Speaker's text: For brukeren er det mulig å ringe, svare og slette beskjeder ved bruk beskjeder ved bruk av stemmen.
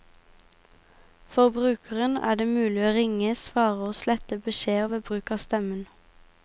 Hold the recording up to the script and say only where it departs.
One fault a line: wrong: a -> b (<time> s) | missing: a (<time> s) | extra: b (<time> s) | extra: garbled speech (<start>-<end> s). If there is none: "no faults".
missing: beskjeder ved bruk (5.3 s)